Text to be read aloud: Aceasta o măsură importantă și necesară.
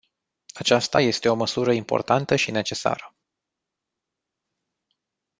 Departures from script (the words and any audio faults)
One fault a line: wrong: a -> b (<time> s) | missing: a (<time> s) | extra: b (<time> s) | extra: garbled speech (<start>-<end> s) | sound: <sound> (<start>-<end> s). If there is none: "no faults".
extra: este (1.0 s)